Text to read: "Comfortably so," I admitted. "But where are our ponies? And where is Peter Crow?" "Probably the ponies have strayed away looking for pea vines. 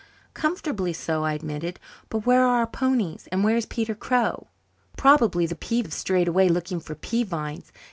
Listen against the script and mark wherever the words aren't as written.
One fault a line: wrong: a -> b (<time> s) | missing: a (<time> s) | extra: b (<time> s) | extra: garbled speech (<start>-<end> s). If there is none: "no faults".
wrong: ponies -> pea (5.5 s)